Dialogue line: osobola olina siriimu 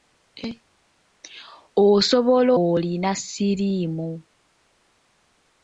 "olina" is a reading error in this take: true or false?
false